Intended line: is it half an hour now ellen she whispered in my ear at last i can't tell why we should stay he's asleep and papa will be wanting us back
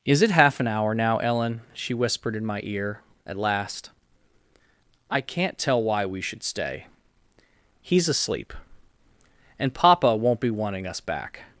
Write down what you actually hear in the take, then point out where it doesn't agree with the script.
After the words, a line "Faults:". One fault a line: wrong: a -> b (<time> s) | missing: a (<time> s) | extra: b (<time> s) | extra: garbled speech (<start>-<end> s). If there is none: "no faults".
is it half an hour now ellen she whispered in my ear at last i can't tell why we should stay he's asleep and papa won't be wanting us back
Faults:
wrong: will -> won't (10.2 s)